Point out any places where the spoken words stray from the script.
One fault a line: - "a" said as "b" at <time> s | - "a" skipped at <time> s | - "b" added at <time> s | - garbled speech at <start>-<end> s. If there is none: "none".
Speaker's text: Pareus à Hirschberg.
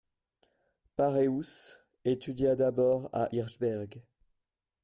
- "étudia d'abord" added at 2.0 s